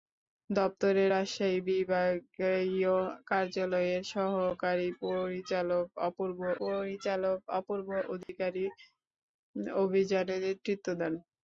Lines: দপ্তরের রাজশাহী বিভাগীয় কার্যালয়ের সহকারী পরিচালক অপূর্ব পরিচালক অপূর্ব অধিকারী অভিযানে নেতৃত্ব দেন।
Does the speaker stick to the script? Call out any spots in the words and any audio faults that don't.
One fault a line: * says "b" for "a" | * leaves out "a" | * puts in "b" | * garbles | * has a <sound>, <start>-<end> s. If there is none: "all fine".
* has a dropout, 8.2-8.3 s